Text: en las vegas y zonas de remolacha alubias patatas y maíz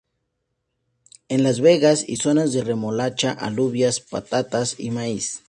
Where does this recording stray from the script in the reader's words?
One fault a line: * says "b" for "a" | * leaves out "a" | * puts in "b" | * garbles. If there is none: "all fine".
all fine